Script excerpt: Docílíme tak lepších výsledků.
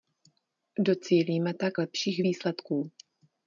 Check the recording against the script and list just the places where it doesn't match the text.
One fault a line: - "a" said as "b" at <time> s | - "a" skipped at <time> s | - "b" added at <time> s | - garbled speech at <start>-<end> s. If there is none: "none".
none